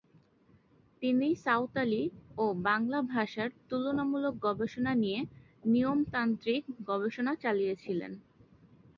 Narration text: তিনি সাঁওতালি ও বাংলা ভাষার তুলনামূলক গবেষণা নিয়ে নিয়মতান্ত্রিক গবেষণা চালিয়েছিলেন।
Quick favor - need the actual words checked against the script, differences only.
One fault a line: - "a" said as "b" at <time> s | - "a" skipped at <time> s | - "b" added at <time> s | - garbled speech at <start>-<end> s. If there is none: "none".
none